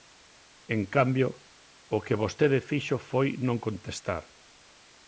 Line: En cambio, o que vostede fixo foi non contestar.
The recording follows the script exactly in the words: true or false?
true